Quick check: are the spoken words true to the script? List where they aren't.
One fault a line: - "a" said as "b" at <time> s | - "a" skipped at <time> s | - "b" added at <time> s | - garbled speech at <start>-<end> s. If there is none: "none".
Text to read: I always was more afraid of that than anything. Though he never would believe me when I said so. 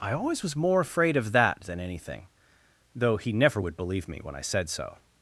none